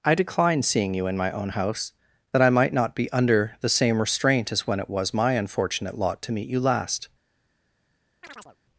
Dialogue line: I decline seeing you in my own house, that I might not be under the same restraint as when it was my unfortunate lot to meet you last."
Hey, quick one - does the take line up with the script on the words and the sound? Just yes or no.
no